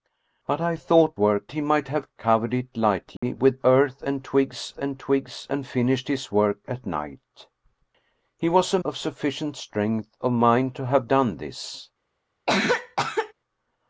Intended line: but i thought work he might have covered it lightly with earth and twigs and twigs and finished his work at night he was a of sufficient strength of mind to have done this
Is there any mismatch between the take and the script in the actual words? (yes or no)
no